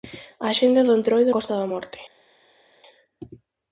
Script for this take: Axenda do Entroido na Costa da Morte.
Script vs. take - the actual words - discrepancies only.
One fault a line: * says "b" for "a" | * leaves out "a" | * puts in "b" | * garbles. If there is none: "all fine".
* leaves out "na"